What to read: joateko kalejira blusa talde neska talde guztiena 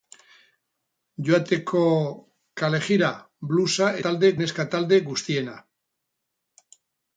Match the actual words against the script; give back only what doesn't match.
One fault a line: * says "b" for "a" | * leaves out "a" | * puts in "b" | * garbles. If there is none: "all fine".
all fine